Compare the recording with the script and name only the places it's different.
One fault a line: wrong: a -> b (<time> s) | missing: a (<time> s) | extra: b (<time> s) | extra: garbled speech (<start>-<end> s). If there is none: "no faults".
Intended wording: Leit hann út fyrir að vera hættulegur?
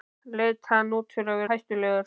missing: vera (1.4 s)